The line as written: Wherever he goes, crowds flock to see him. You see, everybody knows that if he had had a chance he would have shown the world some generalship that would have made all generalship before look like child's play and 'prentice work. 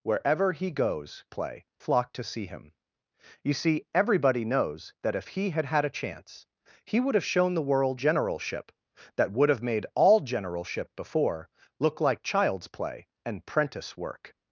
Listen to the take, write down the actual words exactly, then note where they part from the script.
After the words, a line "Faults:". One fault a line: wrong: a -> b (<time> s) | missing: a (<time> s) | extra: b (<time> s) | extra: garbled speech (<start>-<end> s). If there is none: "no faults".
Wherever he goes, play flock to see him. You see, everybody knows that if he had had a chance he would have shown the world generalship that would have made all generalship before look like child's play and 'prentice work.
Faults:
wrong: crowds -> play (1.3 s)
missing: some (8.0 s)